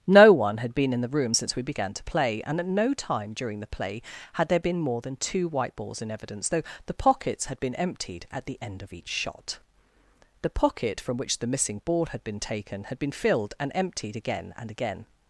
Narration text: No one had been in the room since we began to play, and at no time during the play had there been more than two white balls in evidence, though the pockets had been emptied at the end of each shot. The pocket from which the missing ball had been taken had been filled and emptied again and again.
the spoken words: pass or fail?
pass